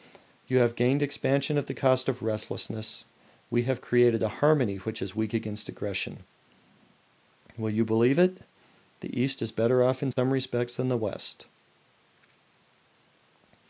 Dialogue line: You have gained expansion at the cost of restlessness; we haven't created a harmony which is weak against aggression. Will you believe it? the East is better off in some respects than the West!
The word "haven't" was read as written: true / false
false